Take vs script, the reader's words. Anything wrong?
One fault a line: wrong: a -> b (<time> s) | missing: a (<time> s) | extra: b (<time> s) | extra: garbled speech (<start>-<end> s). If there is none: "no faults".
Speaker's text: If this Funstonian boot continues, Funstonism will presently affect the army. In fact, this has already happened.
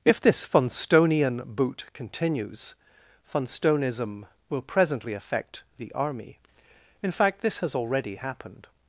no faults